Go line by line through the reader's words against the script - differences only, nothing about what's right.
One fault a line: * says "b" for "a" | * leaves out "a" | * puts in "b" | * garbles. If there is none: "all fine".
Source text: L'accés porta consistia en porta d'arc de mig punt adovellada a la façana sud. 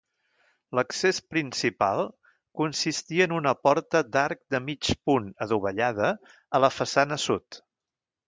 * says "principal" for "porta"
* puts in "una"